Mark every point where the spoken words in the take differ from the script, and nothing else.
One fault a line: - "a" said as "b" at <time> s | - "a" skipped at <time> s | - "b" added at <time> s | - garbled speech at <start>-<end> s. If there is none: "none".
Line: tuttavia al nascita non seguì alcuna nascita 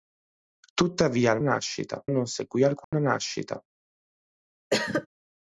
none